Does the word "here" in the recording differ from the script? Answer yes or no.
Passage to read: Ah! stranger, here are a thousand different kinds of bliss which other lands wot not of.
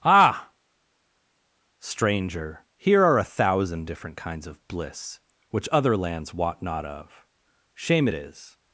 no